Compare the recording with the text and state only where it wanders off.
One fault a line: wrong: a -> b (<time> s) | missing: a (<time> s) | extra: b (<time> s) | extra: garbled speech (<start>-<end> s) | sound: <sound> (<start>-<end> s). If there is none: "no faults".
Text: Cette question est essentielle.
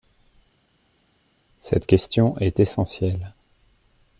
no faults